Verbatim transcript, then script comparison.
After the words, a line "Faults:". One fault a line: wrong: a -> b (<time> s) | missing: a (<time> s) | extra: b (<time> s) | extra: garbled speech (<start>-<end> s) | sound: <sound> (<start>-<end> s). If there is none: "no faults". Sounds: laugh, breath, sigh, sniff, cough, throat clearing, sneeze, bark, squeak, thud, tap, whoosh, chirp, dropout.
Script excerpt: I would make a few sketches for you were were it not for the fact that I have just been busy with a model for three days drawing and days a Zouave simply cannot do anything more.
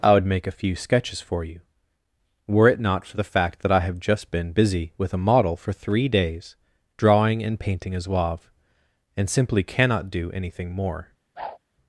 I would make a few sketches for you were it not for the fact that I have just been busy with a model for three days drawing and painting a Zouave and simply cannot do anything more.
Faults:
missing: were (2.7 s)
wrong: days -> painting (7.6 s)
extra: and (9.2 s)
sound: whoosh (11.4-11.6 s)